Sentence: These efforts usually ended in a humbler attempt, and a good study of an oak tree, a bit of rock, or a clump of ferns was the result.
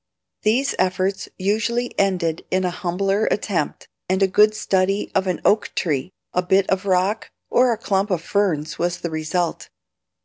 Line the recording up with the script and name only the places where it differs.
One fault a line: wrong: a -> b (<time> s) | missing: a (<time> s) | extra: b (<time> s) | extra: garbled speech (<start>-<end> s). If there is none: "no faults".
no faults